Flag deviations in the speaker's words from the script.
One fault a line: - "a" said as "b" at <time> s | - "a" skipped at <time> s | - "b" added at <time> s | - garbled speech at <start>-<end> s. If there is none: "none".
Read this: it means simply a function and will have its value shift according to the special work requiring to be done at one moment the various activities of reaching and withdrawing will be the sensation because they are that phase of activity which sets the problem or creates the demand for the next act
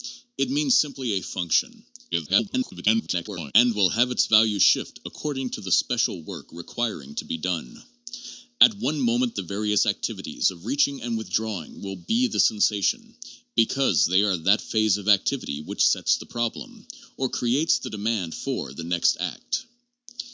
- garbled speech at 2.1-3.5 s